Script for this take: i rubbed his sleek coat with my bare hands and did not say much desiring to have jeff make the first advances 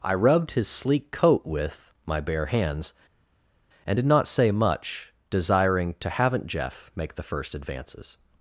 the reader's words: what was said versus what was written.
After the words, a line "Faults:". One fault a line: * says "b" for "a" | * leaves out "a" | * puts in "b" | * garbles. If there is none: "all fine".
i rubbed his sleek coat with my bare hands and did not say much desiring to haven't jeff make the first advances
Faults:
* says "haven't" for "have"